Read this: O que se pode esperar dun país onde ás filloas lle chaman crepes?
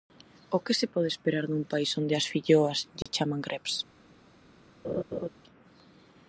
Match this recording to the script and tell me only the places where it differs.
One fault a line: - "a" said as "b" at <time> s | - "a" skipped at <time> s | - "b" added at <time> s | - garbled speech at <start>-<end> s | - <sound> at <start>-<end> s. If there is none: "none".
- dropout at 3.0-3.1 s
- laugh at 4.8-5.3 s